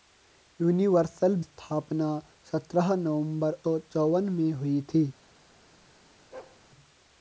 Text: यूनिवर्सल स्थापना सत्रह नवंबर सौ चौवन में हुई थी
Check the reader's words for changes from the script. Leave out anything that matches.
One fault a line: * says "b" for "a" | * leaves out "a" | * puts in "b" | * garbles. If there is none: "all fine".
all fine